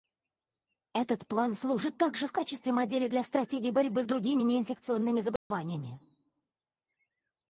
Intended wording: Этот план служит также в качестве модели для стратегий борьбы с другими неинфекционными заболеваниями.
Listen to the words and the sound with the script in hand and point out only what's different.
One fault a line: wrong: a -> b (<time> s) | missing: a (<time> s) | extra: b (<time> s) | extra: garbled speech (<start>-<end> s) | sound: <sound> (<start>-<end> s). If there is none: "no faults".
sound: dropout (5.4-5.5 s)